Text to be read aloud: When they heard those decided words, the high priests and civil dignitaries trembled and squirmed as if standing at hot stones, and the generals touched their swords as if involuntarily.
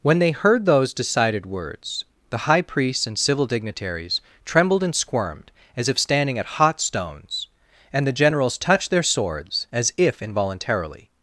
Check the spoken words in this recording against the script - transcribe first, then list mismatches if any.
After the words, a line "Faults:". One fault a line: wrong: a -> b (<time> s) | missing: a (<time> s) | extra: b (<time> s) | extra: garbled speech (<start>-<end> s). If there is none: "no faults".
When they heard those decided words, the high priests and civil dignitaries trembled and squirmed as if standing at hot stones, and the generals touched their swords as if involuntarily.
Faults:
no faults